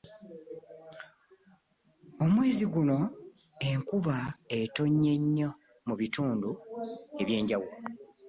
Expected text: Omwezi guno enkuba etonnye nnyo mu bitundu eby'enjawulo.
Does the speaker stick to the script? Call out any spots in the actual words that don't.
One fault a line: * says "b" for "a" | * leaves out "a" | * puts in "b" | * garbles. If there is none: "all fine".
all fine